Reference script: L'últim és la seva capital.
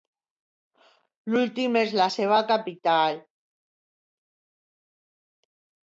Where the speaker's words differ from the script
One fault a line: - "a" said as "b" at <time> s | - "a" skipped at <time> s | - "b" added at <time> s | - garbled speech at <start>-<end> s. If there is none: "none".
none